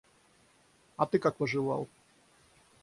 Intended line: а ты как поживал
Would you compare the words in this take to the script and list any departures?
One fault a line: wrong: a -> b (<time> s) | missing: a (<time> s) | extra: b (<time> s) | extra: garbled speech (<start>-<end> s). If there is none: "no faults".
no faults